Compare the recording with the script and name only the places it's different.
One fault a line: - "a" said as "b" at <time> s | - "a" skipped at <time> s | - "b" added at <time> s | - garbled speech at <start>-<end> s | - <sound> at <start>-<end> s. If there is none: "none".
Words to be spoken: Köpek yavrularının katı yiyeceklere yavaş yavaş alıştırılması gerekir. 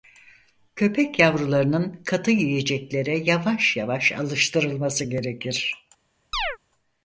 - chirp at 6.3-6.6 s